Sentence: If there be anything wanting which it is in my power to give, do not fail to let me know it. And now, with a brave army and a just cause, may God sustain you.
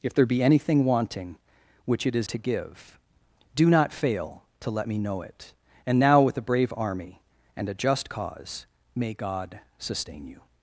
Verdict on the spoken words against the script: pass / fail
fail